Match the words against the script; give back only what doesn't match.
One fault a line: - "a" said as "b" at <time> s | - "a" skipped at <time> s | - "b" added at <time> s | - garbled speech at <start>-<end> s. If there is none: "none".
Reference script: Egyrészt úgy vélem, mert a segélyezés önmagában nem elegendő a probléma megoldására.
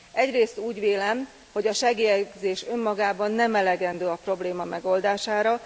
- "mert" said as "hogy" at 1.5 s